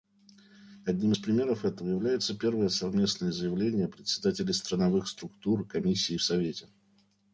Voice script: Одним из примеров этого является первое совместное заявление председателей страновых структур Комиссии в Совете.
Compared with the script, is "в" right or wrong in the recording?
right